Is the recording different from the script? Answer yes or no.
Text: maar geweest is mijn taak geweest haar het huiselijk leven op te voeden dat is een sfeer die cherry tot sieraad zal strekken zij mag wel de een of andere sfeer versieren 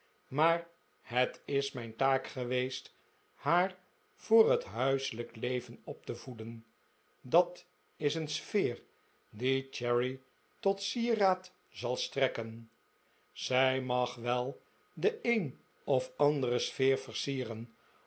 yes